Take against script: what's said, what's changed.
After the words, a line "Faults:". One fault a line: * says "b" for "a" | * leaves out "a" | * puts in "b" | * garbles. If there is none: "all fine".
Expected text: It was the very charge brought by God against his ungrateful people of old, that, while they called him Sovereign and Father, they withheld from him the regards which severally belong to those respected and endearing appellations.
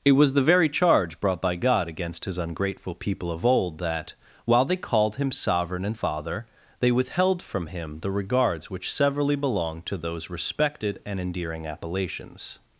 It was the very charge brought by God against his ungrateful people of old, that, while they called him Sovereign and Father, they withheld from him the regards which severally belong to those respected and endearing appellations.
Faults:
all fine